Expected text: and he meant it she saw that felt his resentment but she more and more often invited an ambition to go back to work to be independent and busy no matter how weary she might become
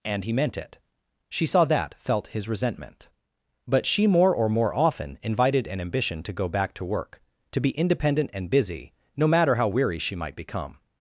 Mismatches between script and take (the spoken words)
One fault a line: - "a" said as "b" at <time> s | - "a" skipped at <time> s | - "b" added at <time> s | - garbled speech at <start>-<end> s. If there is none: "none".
- "and" said as "or" at 4.3 s